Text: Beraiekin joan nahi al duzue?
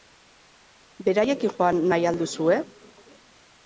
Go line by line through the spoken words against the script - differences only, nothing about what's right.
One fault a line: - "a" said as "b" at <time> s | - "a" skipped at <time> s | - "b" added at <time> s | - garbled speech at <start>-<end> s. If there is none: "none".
none